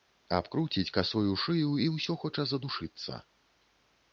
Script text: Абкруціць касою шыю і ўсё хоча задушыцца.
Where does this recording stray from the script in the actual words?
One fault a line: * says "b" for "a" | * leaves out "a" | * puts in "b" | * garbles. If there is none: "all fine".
all fine